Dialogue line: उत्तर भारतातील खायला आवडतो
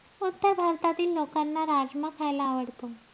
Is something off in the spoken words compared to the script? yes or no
yes